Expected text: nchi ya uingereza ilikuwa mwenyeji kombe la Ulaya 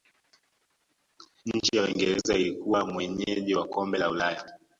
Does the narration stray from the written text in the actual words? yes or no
yes